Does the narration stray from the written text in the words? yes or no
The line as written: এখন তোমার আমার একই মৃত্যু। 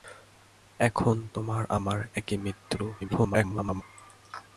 yes